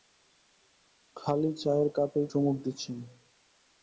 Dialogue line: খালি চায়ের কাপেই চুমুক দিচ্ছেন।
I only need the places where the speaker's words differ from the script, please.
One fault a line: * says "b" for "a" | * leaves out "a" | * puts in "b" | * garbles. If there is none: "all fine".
all fine